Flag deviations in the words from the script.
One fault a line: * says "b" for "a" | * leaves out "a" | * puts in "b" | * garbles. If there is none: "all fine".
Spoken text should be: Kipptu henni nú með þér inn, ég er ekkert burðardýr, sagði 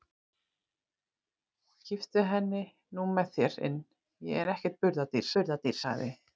* puts in "burðardýr"